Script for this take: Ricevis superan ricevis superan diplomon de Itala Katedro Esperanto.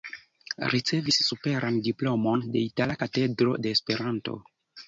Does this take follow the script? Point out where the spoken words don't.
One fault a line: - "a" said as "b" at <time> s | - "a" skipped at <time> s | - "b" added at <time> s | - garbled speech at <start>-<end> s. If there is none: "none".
- "ricevis superan" skipped at 1.8 s
- "de" added at 3.7 s